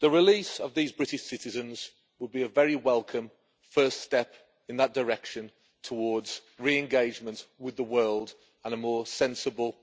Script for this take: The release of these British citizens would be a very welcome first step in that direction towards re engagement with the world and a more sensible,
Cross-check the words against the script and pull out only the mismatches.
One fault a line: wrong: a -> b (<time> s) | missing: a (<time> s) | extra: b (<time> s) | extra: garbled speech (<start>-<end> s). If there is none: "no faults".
no faults